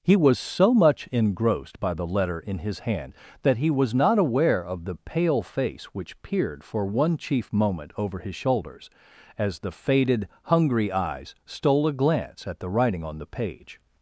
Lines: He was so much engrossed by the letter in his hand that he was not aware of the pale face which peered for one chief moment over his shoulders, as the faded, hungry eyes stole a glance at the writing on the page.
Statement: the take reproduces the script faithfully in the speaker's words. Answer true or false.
true